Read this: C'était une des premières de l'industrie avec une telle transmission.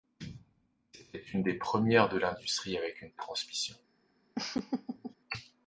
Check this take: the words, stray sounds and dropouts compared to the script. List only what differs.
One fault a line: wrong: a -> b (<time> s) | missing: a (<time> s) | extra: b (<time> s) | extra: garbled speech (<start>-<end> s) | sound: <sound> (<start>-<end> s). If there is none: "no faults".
missing: telle (3.1 s)
sound: laugh (4.3-5.1 s)